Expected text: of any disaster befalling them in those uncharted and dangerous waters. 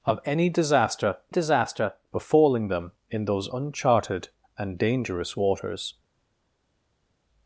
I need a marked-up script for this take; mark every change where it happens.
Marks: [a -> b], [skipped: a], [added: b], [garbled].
of any disaster [added: disaster] befalling them in those uncharted and dangerous waters.